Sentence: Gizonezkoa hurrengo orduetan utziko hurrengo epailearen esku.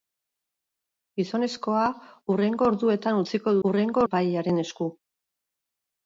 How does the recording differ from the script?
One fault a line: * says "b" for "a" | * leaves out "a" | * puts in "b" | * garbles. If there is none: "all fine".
all fine